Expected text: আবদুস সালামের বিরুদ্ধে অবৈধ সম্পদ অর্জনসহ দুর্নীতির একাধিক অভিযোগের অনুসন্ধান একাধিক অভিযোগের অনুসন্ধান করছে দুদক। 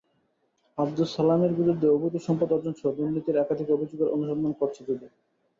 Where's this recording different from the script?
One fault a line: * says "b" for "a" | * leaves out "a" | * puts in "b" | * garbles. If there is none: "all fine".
* leaves out "একাধিক অভিযোগের অনুসন্ধান"